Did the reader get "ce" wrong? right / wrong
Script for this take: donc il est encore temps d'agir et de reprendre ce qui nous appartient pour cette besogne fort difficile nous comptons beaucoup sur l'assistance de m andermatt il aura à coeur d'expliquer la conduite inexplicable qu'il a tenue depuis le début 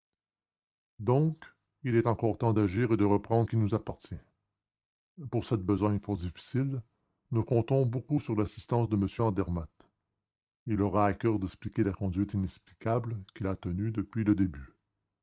wrong